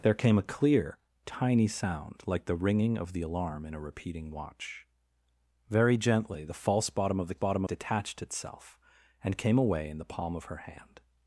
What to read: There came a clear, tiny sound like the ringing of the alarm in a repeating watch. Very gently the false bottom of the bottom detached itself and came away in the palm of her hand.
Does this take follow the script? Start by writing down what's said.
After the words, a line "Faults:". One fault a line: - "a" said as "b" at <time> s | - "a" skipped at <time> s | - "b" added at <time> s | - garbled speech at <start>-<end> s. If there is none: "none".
There came a clear, tiny sound like the ringing of the alarm in a repeating watch. Very gently the false bottom of the bottom detached itself and came away in the palm of her hand.
Faults:
none